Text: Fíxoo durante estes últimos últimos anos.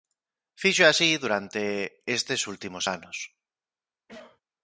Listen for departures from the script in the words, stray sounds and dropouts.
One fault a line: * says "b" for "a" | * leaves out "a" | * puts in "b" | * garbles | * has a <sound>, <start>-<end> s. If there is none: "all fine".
* puts in "así"
* leaves out "últimos"
* has a cough, 4.1-4.4 s